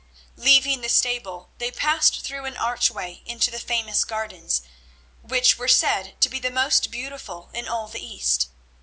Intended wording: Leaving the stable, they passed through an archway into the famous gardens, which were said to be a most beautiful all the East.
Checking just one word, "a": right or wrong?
wrong